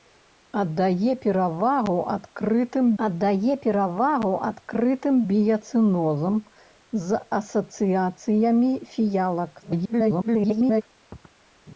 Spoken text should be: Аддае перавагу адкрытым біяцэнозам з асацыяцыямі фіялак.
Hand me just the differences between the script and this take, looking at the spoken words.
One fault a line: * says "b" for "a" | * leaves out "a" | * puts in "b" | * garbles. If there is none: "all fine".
* puts in "аддае перавагу адкрытым"
* garbles